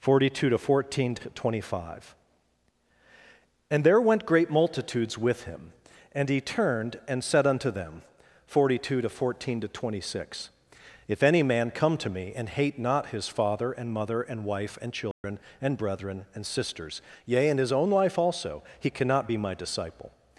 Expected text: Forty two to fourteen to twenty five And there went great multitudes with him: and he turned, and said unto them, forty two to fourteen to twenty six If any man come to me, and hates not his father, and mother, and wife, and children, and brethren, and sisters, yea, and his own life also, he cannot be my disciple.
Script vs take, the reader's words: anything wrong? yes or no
yes